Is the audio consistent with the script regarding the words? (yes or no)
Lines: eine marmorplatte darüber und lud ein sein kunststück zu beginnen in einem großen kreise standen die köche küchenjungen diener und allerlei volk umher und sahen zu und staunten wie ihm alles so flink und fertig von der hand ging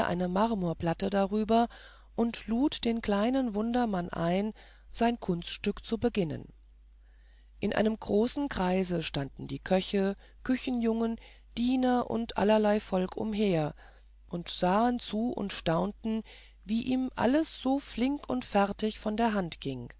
no